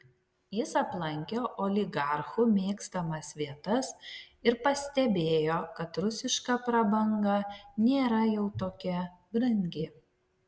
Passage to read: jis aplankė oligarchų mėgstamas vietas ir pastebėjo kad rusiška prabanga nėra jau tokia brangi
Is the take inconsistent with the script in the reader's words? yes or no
no